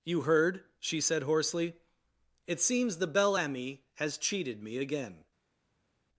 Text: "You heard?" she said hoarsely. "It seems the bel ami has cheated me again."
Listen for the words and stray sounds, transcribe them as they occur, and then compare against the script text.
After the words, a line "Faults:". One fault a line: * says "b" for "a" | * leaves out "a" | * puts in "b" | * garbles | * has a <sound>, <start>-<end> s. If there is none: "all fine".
"You heard?" she said hoarsely. "It seems the bel ami has cheated me again."
Faults:
all fine